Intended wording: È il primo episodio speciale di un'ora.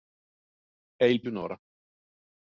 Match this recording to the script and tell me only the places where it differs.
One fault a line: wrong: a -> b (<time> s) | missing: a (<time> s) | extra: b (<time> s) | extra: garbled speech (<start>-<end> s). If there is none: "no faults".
missing: primo episodio speciale (1.2 s)